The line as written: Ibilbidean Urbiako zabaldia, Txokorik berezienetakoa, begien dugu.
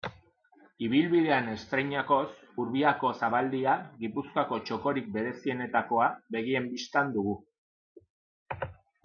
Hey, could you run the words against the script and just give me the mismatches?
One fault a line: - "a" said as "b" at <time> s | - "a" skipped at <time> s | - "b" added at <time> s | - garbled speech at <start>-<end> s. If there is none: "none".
- "estreinakoz" added at 1.5 s
- "Gipuzkoako" added at 4.0 s
- "bistan" added at 6.7 s